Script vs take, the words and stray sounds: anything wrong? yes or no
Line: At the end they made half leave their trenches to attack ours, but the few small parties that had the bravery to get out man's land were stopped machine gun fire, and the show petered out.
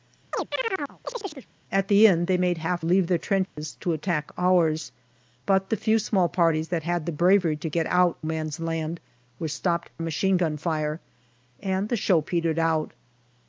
yes